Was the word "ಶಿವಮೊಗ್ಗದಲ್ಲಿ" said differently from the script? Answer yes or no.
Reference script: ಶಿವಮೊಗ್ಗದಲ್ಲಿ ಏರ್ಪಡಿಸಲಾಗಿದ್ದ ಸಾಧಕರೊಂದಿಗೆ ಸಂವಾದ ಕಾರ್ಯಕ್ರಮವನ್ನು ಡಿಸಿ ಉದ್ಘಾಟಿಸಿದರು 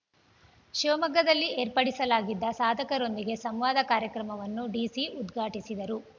no